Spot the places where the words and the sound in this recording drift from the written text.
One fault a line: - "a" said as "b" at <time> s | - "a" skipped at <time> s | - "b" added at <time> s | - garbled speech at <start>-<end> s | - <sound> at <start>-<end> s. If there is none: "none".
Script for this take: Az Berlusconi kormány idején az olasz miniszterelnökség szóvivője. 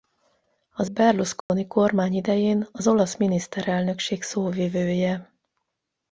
- dropout at 1.4-1.5 s